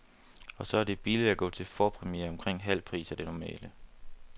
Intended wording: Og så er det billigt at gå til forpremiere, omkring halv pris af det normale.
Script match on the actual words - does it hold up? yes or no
yes